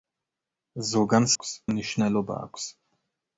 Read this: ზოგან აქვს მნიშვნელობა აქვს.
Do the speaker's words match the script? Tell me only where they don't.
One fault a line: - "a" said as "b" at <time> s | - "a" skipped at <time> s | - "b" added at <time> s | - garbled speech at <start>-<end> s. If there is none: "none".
none